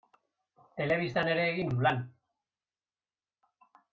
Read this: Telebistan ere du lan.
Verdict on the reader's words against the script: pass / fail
fail